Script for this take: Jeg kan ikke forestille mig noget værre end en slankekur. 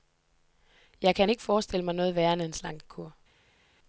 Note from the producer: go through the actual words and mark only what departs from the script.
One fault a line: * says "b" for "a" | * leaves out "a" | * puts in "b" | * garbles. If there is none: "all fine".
all fine